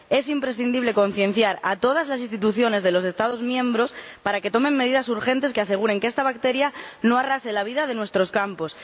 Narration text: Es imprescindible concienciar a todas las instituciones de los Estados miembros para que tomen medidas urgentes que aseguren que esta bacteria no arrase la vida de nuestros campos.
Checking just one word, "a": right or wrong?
right